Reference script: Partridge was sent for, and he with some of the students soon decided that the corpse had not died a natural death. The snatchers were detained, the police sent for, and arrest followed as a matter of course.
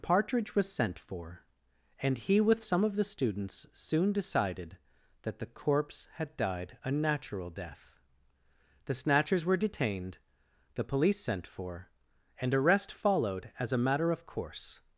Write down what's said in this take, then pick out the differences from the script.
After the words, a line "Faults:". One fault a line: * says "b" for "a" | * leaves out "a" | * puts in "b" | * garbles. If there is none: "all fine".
Partridge was sent for, and he with some of the students soon decided that the corpse had died a natural death. The snatchers were detained, the police sent for, and arrest followed as a matter of course.
Faults:
* leaves out "not"